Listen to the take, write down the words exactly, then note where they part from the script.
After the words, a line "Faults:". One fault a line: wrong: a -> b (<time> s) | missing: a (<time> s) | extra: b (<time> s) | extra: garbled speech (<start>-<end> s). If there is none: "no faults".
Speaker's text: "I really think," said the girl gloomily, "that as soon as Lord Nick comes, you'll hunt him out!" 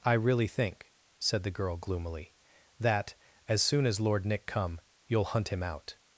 "I really think," said the girl gloomily, "that as soon as Lord Nick come, you'll hunt him out!"
Faults:
wrong: comes -> come (4.5 s)